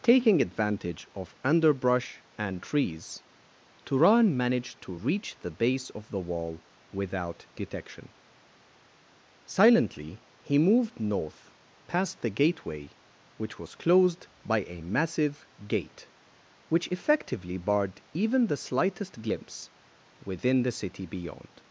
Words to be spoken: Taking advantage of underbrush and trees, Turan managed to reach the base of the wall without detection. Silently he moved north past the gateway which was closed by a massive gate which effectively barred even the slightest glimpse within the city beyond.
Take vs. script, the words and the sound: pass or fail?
pass